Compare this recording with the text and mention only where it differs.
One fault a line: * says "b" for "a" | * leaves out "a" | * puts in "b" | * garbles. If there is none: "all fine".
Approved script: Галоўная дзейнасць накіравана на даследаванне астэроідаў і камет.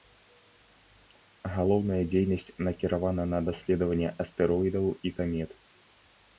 all fine